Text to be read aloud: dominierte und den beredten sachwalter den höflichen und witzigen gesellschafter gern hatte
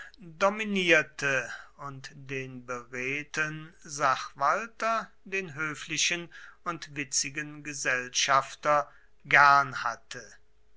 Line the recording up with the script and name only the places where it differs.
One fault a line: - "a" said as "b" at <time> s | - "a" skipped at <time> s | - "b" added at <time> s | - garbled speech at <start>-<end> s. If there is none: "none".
none